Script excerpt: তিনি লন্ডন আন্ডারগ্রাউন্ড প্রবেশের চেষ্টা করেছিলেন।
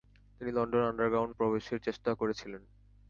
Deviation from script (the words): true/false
false